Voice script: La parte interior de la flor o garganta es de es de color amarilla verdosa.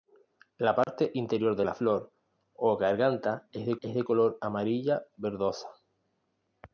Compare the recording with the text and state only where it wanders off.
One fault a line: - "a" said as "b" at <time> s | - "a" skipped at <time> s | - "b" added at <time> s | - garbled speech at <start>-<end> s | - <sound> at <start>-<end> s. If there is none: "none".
- dropout at 0.8-0.9 s